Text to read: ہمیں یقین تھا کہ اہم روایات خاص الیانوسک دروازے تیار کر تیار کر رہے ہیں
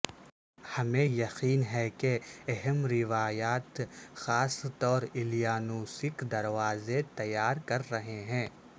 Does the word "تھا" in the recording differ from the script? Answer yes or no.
yes